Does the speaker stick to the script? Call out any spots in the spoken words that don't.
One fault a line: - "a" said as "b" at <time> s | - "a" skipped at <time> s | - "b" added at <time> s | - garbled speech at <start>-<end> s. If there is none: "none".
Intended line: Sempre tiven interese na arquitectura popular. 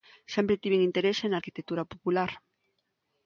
none